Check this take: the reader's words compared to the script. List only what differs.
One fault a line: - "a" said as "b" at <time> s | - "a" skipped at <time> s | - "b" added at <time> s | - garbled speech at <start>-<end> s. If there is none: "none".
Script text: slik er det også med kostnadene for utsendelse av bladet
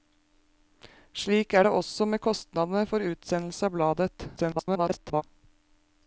- garbled speech at 4.4-5.2 s